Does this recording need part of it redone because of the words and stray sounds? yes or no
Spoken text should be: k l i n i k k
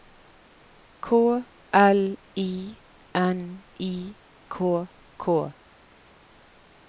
no